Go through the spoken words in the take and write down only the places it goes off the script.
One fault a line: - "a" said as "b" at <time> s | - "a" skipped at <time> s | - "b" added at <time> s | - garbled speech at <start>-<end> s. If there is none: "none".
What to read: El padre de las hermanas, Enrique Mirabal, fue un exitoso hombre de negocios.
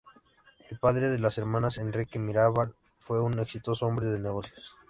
none